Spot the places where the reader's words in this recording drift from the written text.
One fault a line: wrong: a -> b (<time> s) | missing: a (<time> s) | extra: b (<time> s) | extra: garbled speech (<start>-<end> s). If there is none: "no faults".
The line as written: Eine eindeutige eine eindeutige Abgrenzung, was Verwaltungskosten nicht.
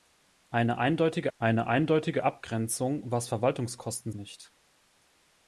no faults